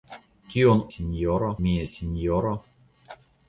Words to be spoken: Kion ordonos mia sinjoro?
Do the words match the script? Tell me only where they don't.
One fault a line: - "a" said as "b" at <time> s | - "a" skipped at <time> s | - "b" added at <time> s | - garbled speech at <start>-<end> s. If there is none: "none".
- "ordonos" said as "sinjoro" at 0.9 s